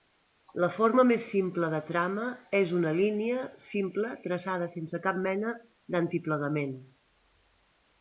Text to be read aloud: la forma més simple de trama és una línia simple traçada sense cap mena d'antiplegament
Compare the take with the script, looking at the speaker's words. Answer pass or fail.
pass